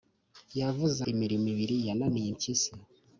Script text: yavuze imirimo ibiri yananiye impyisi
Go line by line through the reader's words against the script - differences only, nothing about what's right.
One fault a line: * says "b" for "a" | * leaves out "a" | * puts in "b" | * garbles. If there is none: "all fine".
all fine